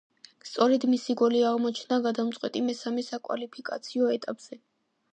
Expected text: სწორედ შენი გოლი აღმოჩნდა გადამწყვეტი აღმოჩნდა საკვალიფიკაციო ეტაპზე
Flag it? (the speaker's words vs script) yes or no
yes